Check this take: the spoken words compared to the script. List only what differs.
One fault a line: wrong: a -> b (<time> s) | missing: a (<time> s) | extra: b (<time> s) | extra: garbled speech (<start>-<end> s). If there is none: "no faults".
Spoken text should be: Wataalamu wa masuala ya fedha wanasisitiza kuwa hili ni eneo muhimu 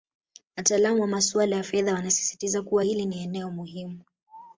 no faults